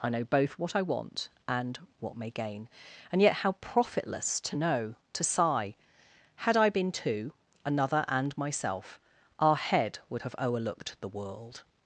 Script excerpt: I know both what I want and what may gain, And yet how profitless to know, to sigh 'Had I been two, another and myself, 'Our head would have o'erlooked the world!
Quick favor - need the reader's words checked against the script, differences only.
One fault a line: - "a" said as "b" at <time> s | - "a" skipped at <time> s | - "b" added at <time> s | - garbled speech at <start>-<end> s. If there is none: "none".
none